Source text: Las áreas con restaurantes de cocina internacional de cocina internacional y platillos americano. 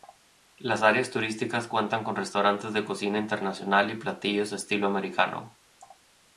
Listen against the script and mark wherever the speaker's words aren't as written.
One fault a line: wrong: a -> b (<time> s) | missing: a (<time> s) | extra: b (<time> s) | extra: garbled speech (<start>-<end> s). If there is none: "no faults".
extra: turísticas cuentan (1.1 s)
missing: de cocina internacional (3.9 s)
extra: estilo (4.5 s)